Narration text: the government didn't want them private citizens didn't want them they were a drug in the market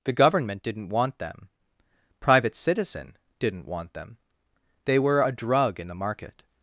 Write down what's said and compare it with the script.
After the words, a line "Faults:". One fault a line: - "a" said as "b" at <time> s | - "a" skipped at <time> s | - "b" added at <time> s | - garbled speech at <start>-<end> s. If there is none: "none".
the government didn't want them private citizen didn't want them they were a drug in the market
Faults:
- "citizens" said as "citizen" at 2.5 s